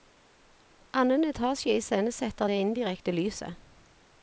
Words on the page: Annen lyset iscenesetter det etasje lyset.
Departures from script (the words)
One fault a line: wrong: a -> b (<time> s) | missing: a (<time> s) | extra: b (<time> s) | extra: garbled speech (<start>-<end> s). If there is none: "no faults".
wrong: lyset -> etasje (1.2 s)
wrong: etasje -> indirekte (2.6 s)